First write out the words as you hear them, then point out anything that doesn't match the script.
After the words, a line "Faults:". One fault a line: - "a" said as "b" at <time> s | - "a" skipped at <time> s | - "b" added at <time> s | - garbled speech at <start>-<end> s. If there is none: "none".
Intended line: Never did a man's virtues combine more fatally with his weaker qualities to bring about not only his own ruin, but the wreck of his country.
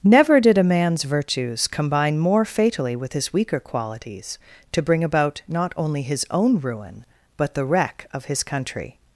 Never did a man's virtues combine more fatally with his weaker qualities to bring about not only his own ruin, but the wreck of his country.
Faults:
none